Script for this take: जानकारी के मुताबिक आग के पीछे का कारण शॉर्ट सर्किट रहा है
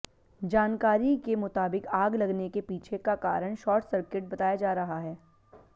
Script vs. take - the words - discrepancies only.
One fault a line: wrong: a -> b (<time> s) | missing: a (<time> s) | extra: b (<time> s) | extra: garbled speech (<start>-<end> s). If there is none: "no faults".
extra: लगने (2.1 s)
extra: बताया जा (4.3 s)